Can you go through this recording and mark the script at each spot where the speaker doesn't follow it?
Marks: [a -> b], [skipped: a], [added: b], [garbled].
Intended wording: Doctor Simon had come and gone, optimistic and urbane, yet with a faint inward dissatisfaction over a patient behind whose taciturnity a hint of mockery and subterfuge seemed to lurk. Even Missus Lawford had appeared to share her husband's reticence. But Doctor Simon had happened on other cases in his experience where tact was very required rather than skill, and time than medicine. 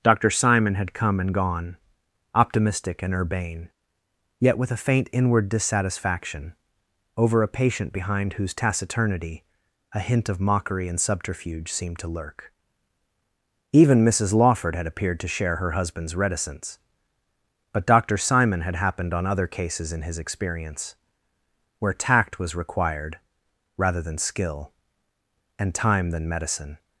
Doctor Simon had come and gone, optimistic and urbane, yet with a faint inward dissatisfaction over a patient behind whose taciturnity a hint of mockery and subterfuge seemed to lurk. Even Missus Lawford had appeared to share her husband's reticence. But Doctor Simon had happened on other cases in his experience where tact was [skipped: very] required rather than skill, and time than medicine.